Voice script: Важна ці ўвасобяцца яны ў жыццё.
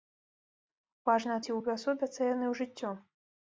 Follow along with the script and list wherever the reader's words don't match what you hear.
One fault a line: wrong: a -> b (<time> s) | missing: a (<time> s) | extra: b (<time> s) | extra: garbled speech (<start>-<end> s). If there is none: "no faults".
no faults